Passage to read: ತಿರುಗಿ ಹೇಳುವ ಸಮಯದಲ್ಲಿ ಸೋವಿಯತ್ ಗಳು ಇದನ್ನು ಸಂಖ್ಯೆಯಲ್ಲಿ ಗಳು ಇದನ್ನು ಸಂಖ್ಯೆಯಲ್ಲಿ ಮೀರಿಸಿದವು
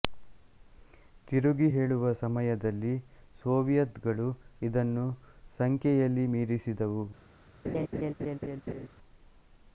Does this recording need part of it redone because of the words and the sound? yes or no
yes